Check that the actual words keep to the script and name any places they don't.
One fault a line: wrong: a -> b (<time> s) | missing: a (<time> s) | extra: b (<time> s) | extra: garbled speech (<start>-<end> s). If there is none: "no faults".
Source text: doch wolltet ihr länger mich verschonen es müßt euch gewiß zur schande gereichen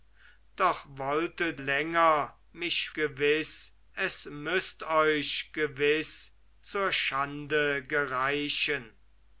missing: ihr (1.6 s)
wrong: verschonen -> gewiß (2.9 s)